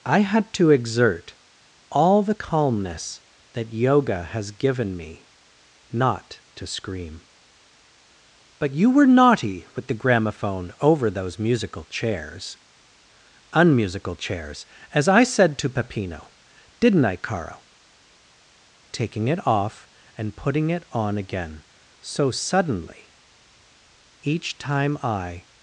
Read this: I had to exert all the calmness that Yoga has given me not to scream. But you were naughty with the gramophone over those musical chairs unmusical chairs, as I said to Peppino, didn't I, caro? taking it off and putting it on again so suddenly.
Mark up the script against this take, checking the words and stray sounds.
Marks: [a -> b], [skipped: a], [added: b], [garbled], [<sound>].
I had to exert all the calmness that Yoga has given me not to scream. But you were naughty with the gramophone over those musical chairs unmusical chairs, as I said to Peppino, didn't I, caro? taking it off and putting it on again so suddenly. [added: Each time I]